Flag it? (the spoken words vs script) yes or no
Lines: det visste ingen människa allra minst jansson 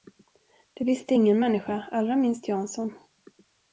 no